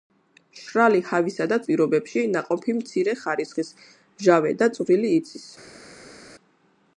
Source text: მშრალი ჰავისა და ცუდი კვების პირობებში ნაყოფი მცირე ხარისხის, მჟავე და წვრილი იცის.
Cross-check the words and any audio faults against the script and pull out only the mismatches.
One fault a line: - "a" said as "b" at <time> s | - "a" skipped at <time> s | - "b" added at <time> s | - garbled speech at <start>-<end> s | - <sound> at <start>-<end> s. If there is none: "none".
- "ცუდი კვების" skipped at 1.6 s